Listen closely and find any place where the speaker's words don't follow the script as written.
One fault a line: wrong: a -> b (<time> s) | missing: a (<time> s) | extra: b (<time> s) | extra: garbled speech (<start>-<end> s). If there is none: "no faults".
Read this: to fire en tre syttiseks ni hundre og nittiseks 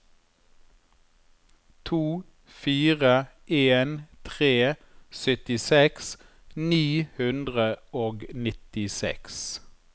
no faults